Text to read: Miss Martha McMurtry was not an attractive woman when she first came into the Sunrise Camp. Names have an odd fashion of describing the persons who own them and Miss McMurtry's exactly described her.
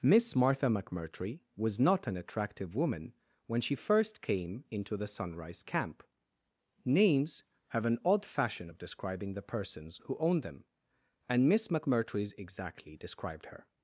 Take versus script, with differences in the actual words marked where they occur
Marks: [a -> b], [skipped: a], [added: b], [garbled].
Miss Martha McMurtry was not an attractive woman when she first came into the Sunrise Camp. Names have an odd fashion of describing the persons who own them and Miss McMurtry's exactly described her.